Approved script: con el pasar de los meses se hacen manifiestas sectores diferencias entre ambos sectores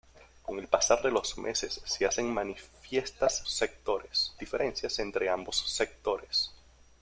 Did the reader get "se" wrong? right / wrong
right